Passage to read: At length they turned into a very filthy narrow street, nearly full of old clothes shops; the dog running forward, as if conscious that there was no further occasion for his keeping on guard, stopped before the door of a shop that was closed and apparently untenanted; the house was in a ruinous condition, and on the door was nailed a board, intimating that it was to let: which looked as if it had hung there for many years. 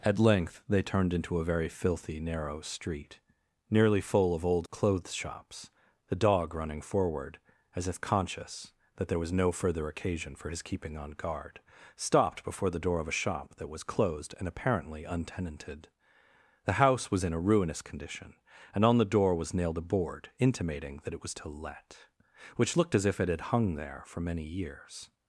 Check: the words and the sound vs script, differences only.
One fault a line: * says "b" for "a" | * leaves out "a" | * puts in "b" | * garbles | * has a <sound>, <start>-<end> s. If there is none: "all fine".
all fine